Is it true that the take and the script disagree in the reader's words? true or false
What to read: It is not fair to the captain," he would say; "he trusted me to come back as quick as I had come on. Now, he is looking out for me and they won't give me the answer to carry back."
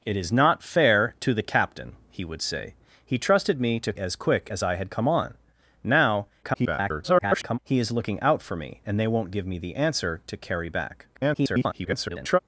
true